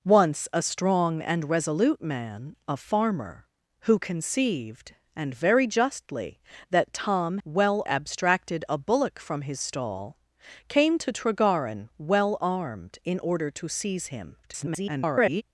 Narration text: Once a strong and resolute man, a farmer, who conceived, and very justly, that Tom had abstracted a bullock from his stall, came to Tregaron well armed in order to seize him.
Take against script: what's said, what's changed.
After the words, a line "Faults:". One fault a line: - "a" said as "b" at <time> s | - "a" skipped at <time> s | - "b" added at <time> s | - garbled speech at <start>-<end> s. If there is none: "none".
Once a strong and resolute man, a farmer, who conceived, and very justly, that Tom well abstracted a bullock from his stall, came to Tregaron well armed in order to seize him. [garbled]
Faults:
- "had" said as "well" at 7.4 s
- garbled speech at 14.4-15.4 s